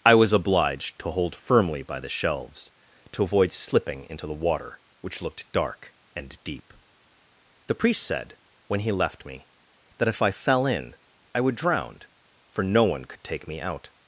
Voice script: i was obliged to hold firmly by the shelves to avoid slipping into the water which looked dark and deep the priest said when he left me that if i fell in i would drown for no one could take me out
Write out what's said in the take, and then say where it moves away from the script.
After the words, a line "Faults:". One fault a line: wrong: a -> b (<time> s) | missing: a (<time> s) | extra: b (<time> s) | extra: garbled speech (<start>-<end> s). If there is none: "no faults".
i was obliged to hold firmly by the shelves to avoid slipping into the water which looked dark and deep the priest said when he left me that if i fell in i would drown for no one could take me out
Faults:
no faults